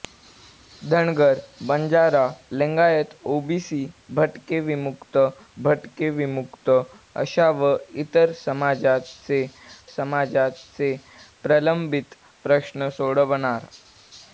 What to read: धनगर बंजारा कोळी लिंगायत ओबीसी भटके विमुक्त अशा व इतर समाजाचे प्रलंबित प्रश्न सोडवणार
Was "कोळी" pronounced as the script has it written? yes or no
no